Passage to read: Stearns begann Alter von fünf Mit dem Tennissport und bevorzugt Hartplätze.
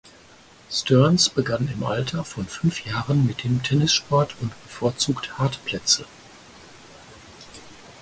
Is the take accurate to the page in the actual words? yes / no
no